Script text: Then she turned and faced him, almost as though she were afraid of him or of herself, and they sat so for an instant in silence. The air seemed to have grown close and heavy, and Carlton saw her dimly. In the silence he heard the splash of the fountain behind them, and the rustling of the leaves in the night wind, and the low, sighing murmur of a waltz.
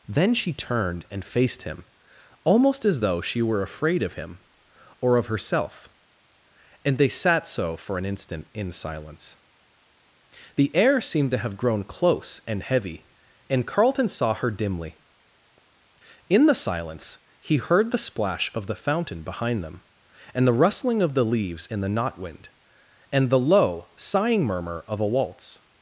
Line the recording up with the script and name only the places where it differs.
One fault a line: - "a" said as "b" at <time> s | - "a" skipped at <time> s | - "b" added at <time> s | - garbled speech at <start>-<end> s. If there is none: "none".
- "night" said as "knot" at 21.9 s